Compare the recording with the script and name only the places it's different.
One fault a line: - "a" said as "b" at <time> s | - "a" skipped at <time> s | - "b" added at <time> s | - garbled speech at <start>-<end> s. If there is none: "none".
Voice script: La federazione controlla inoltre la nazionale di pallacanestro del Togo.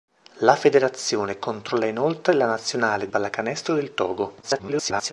- "di" skipped at 3.1 s
- garbled speech at 4.4-5.1 s